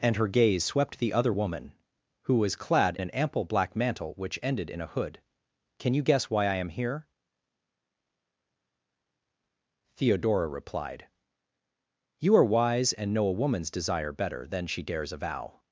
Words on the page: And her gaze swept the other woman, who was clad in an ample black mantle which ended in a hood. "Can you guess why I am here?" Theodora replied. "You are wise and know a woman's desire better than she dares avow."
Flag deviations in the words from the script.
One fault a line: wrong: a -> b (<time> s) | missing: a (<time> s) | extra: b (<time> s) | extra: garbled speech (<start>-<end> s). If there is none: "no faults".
missing: in (3.0 s)